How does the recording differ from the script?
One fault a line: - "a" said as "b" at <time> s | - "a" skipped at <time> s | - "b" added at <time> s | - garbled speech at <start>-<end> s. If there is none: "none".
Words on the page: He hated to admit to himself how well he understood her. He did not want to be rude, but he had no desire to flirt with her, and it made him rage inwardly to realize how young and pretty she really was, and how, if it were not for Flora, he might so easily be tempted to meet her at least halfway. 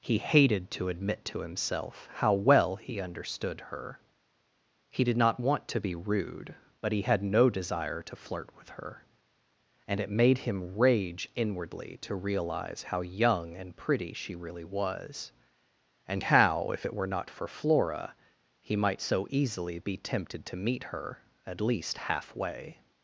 none